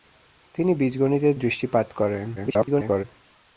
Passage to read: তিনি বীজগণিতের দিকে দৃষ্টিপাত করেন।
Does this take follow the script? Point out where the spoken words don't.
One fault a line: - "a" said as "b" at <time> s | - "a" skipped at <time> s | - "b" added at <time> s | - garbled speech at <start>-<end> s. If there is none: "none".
- "দিকে" skipped at 1.3 s
- garbled speech at 2.4-3.0 s